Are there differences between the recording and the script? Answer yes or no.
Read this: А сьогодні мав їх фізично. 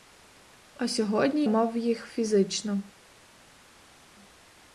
no